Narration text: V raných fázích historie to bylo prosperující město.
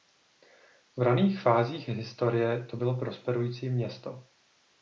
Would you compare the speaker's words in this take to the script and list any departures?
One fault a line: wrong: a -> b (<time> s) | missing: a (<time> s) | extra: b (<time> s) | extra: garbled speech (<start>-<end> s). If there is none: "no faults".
no faults